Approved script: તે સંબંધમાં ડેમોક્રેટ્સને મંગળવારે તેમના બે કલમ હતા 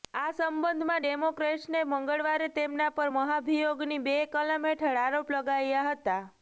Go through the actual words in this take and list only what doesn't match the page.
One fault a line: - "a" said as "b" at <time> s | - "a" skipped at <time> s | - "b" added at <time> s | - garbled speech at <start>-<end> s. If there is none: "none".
- "તે" said as "આ" at 0.1 s
- "પર મહાભિયોગની" added at 2.9 s
- "હેઠળ આરોપ લગાવ્યા" added at 4.7 s